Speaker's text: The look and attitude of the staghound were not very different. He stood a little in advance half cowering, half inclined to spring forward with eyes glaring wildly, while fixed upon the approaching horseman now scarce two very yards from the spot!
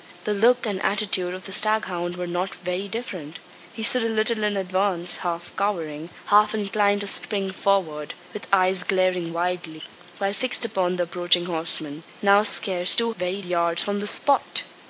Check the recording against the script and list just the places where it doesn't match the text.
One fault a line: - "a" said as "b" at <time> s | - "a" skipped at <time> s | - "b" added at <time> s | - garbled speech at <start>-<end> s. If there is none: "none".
none